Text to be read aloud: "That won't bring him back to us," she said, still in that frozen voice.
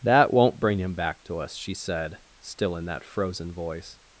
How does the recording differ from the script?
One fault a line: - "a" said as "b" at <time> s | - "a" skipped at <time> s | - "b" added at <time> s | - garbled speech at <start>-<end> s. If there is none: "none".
none